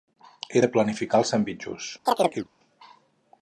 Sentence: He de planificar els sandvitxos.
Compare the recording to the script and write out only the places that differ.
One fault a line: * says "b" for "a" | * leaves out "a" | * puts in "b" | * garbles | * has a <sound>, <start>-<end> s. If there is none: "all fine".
* has a chirp, 2.1-2.5 s